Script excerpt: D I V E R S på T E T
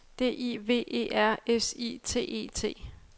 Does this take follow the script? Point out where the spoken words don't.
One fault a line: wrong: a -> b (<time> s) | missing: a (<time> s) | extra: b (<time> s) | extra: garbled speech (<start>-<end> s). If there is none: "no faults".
wrong: på -> I (1.8 s)